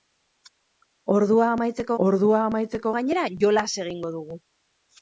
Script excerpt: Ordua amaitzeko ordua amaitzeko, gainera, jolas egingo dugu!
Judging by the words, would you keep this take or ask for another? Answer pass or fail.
pass